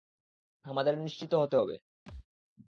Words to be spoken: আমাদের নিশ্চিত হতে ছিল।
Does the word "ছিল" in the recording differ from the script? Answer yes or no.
yes